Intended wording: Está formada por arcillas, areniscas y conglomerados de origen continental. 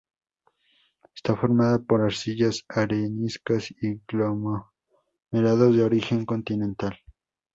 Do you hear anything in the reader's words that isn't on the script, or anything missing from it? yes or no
no